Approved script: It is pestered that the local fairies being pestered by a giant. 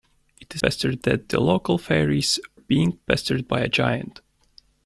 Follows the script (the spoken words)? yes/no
yes